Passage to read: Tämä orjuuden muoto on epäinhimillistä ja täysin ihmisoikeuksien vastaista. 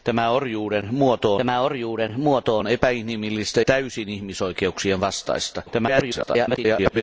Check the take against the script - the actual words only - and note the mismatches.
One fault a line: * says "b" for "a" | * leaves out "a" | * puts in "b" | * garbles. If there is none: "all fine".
* puts in "tämä orjuuden muoto"
* leaves out "ja"
* garbles